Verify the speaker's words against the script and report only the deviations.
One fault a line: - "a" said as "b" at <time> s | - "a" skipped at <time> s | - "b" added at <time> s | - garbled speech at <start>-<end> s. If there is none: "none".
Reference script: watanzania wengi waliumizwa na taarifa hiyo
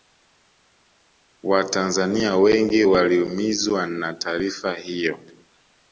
none